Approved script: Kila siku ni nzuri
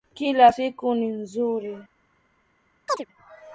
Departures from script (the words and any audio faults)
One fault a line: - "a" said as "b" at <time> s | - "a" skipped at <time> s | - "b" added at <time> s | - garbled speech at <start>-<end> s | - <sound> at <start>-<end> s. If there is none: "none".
- chirp at 2.9-3.1 s